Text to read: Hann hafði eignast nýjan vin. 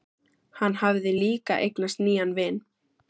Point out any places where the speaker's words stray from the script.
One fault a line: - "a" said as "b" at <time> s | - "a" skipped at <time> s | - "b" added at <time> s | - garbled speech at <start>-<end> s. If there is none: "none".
- "líka" added at 1.2 s